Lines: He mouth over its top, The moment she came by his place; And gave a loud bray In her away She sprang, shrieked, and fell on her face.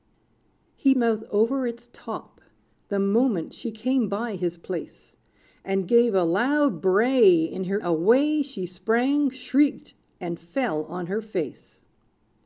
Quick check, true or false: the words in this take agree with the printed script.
true